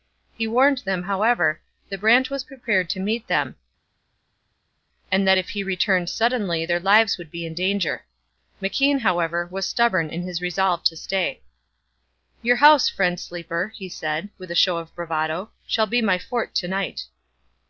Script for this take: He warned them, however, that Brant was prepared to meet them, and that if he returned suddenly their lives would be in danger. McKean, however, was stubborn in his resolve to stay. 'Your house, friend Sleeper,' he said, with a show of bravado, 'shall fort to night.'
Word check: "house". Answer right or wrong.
right